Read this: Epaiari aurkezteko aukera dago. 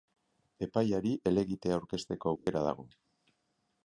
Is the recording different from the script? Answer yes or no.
yes